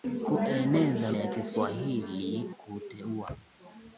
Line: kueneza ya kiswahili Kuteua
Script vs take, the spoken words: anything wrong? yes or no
no